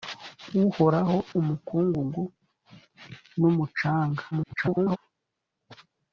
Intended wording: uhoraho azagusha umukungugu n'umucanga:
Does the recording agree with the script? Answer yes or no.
no